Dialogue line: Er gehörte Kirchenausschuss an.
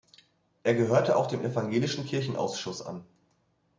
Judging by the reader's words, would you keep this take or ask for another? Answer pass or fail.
fail